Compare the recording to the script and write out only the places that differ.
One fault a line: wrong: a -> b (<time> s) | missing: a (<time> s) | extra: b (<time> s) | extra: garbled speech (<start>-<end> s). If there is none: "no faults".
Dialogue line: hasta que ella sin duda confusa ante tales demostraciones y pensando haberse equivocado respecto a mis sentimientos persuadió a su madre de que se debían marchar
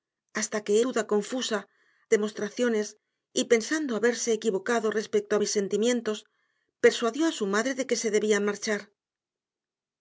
missing: ella sin (0.8 s)
missing: ante tales (1.6 s)